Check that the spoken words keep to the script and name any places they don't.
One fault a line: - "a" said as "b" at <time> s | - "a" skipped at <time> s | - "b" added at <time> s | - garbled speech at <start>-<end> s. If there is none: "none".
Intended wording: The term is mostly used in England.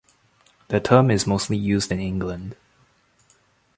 none